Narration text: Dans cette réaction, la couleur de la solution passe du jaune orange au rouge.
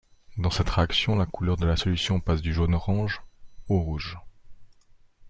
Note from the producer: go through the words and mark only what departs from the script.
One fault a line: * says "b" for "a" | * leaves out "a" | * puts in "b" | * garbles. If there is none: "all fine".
all fine